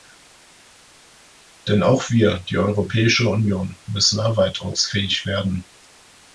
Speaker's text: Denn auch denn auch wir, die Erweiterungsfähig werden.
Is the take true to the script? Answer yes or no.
no